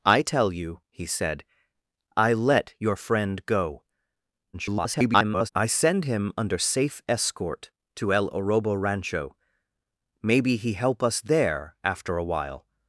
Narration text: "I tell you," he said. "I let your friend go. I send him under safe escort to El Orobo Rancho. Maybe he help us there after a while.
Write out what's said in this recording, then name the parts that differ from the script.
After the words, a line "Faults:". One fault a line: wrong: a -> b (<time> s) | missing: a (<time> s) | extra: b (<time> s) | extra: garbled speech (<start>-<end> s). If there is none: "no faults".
"I tell you," he said. "I let your friend go. [garbled] I send him under safe escort to El Orobo Rancho. Maybe he help us there after a while.
Faults:
extra: garbled speech (4.5-5.5 s)